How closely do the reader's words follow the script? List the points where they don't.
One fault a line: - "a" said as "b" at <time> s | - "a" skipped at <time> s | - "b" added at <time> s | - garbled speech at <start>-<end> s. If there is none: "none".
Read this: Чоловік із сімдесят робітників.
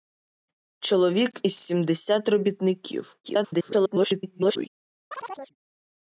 - garbled speech at 3.2-4.7 s